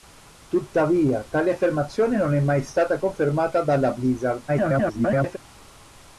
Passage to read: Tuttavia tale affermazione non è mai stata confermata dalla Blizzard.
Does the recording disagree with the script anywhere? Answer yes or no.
yes